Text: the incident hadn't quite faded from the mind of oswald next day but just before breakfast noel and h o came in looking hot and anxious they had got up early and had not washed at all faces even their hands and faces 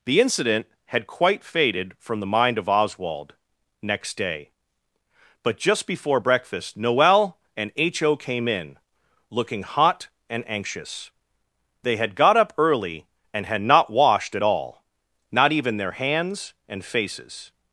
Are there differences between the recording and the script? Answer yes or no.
yes